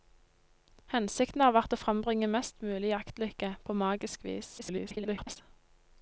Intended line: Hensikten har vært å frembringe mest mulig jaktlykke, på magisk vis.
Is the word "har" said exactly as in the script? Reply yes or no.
yes